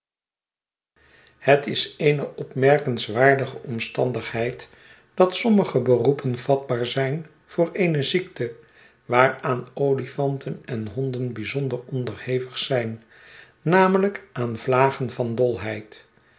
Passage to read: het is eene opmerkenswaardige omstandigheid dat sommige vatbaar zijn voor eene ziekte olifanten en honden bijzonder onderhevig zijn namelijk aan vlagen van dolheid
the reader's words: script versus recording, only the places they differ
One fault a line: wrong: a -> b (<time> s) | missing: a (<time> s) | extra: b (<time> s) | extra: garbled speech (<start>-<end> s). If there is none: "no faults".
extra: beroepen (5.8 s)
extra: waaraan (9.1 s)